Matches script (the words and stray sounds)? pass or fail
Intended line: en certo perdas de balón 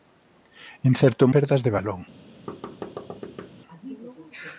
fail